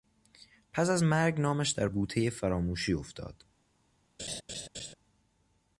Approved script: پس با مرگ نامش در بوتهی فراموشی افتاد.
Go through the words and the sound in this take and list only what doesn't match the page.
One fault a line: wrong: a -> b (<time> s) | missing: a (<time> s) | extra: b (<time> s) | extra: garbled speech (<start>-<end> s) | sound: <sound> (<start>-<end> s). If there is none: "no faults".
wrong: با -> از (0.9 s)
sound: laugh (4.2-4.9 s)